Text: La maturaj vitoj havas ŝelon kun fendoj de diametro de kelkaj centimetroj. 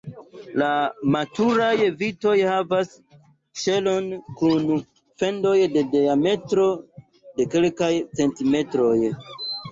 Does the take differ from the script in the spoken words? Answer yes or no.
no